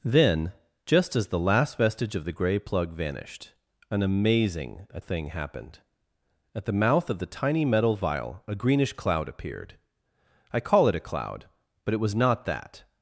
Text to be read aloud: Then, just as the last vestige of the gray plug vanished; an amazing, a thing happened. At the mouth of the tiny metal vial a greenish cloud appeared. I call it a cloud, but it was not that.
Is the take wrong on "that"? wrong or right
right